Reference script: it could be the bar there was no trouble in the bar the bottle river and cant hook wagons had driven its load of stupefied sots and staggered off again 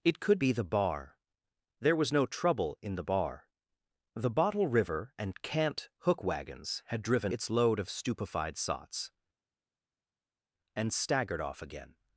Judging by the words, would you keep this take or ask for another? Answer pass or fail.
pass